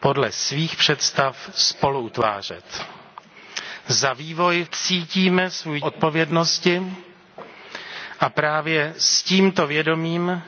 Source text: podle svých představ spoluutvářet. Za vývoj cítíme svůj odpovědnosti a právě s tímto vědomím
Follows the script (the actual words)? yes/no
yes